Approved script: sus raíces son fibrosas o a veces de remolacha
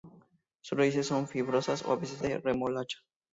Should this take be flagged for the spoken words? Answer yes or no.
no